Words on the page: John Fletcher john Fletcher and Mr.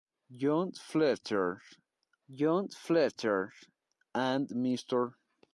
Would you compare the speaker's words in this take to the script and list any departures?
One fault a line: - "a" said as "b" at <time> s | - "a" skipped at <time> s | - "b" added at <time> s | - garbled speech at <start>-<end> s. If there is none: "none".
none